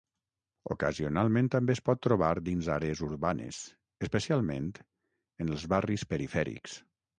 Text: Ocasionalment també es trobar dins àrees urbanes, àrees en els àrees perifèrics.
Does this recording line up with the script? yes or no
no